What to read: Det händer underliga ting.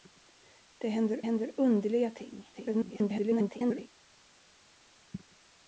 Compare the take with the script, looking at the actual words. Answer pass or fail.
fail